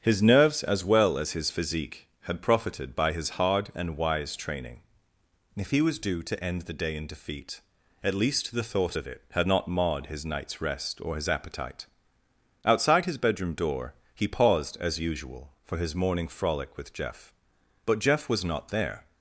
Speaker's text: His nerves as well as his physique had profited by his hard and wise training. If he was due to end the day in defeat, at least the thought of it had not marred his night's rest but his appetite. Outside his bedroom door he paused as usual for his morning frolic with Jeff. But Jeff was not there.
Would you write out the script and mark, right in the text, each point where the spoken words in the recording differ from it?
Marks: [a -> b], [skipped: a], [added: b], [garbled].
His nerves as well as his physique had profited by his hard and wise training. If he was due to end the day in defeat, at least the thought of it had not marred his night's rest [but -> or] his appetite. Outside his bedroom door he paused as usual for his morning frolic with Jeff. But Jeff was not there.